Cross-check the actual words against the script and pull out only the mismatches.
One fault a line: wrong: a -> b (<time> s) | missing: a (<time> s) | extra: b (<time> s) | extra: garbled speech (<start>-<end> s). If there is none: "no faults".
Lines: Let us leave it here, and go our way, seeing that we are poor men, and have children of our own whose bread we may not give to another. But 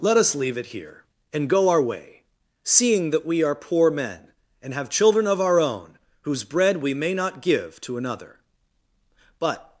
no faults